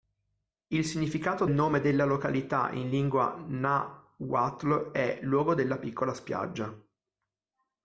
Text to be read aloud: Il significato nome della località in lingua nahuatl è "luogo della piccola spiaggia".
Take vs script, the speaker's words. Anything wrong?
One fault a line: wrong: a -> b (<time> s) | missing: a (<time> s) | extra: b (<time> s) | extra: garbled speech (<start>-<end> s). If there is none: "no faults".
no faults